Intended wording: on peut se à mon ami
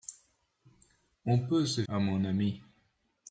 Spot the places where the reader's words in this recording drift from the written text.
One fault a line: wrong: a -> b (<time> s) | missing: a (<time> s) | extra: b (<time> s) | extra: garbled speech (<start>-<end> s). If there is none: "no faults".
no faults